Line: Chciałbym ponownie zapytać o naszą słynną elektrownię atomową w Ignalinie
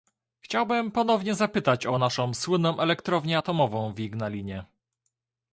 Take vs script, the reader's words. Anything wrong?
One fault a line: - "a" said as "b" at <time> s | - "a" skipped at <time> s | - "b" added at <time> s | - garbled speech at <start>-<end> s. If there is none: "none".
none